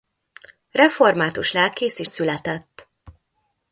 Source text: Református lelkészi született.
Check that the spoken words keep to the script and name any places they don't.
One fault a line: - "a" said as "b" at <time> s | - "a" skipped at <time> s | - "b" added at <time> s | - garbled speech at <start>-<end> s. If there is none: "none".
none